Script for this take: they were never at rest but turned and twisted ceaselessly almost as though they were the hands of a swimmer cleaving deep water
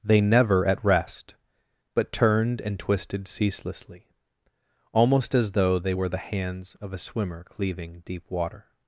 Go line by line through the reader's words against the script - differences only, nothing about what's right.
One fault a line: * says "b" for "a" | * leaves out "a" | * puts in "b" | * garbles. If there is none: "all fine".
* leaves out "were"